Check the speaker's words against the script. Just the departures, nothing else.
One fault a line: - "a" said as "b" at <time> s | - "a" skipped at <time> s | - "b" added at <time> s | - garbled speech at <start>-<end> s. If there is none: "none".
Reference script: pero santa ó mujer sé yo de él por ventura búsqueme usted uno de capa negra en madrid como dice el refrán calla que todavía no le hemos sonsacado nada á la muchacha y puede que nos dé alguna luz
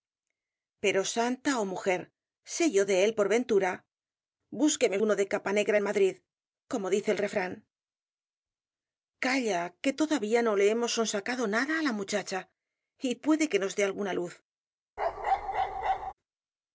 - "usted" skipped at 5.0 s